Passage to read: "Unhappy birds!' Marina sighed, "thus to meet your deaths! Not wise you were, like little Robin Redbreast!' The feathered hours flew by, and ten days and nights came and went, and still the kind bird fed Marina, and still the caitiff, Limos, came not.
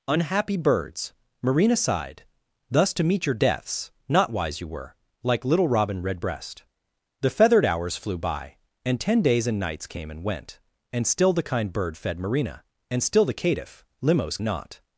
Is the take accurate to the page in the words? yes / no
no